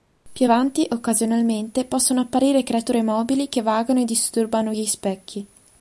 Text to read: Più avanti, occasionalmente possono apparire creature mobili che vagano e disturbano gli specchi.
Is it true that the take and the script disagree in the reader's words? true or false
false